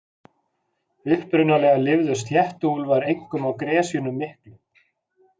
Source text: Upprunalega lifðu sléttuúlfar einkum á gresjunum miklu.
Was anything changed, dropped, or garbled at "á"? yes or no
no